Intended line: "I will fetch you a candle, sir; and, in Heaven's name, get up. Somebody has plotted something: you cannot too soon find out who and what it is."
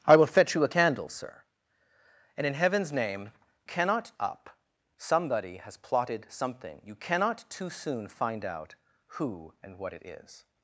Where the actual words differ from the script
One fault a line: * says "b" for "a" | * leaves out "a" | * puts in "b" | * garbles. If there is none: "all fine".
* says "cannot" for "get"